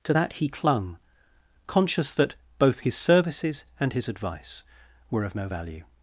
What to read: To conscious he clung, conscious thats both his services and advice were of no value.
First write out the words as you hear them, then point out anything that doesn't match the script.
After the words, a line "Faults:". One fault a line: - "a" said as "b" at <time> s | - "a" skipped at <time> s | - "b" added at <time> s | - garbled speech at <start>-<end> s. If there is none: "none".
To that he clung, conscious that both his services and his advice were of no value.
Faults:
- "conscious" said as "that" at 0.1 s
- "thats" said as "that" at 2.1 s
- "his" added at 3.9 s